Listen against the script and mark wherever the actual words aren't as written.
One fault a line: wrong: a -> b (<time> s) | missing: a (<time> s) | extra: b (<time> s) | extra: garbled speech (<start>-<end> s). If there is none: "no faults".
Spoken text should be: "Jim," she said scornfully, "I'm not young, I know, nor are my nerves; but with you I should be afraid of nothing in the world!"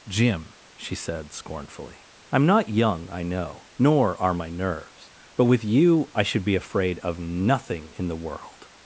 no faults